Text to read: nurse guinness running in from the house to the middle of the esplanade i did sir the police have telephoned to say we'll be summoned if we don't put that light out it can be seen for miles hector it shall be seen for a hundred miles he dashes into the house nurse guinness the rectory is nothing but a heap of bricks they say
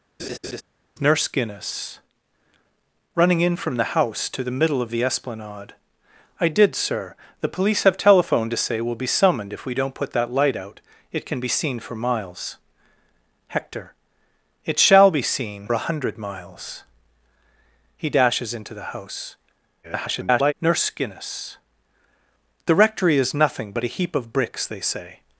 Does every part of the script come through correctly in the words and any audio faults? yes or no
no